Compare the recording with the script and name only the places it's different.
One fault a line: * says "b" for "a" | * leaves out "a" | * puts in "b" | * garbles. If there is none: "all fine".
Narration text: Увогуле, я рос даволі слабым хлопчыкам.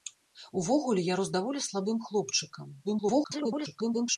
* garbles